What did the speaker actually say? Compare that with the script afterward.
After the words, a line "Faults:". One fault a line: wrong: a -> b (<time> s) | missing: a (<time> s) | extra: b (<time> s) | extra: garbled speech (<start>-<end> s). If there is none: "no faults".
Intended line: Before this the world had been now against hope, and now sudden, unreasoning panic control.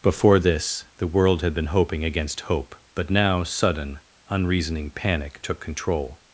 Before this the world had been hoping against hope, but now sudden, unreasoning panic took control.
Faults:
wrong: now -> hoping (1.7 s)
wrong: and -> but (3.0 s)
extra: took (5.4 s)